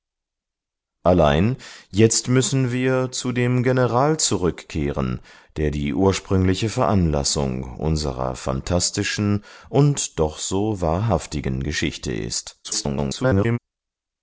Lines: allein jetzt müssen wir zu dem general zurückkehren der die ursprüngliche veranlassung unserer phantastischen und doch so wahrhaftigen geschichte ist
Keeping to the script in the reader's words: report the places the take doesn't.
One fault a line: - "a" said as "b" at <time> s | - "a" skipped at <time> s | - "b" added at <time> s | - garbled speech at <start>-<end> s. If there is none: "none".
- garbled speech at 12.6-13.6 s